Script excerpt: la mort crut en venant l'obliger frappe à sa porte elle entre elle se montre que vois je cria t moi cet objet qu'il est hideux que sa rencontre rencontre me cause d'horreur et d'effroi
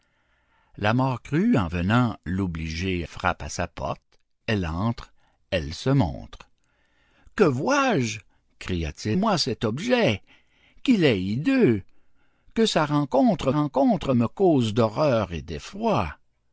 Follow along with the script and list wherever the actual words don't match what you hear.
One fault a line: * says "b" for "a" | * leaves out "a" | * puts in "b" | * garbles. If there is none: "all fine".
all fine